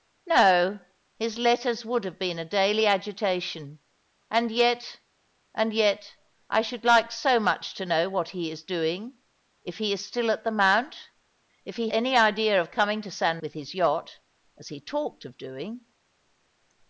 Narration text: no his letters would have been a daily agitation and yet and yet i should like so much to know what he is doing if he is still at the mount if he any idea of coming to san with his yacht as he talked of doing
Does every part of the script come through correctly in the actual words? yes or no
yes